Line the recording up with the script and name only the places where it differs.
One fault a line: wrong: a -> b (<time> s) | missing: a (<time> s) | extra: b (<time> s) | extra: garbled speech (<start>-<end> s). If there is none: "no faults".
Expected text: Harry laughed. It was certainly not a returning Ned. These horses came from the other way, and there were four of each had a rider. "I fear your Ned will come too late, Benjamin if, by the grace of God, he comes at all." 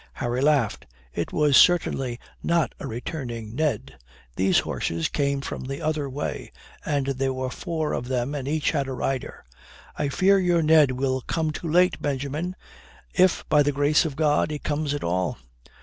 extra: them and (8.1 s)